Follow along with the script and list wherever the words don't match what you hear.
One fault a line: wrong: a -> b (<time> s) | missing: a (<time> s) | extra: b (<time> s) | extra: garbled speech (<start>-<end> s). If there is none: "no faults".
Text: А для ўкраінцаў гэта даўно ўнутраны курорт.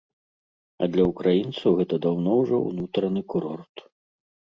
extra: ўжо (2.4 s)